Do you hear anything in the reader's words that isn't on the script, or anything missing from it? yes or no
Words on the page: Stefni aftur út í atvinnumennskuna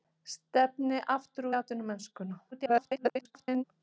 yes